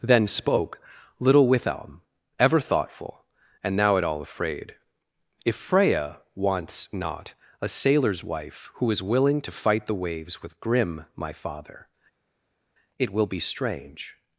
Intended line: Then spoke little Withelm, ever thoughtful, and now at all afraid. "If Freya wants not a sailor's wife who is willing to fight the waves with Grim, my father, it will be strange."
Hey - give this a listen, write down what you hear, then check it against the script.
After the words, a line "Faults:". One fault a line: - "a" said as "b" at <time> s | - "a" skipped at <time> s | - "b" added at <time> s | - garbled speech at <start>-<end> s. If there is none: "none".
Then spoke little Withelm, ever thoughtful, and now at all afraid. "If Freya wants not a sailor's wife who is willing to fight the waves with Grim, my father, it will be strange."
Faults:
none